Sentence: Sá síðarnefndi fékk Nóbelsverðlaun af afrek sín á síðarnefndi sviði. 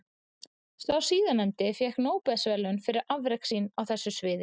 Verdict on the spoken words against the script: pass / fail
fail